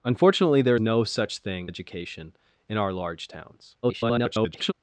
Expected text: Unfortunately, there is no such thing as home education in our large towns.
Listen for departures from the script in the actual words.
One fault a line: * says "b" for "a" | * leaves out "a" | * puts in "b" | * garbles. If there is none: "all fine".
* leaves out "is"
* leaves out "as home"
* garbles